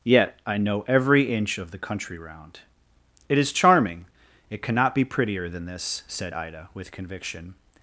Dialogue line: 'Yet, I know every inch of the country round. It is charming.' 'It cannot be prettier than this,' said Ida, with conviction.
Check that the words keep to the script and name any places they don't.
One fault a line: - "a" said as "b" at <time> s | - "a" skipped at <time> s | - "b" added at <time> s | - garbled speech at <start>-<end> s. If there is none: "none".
none